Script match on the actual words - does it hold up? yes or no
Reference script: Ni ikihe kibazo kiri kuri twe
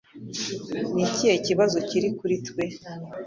yes